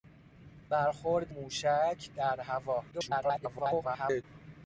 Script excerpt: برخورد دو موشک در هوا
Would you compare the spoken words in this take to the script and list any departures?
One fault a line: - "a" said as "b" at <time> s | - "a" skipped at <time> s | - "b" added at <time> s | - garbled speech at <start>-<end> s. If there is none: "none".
- "دو" skipped at 1.3 s
- garbled speech at 2.9-4.2 s